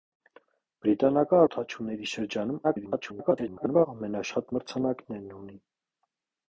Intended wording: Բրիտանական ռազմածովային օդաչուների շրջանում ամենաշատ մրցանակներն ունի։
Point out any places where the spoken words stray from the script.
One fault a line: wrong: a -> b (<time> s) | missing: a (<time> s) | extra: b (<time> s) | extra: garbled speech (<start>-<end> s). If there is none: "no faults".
missing: ռազմածովային (1.4 s)
extra: garbled speech (2.6-3.9 s)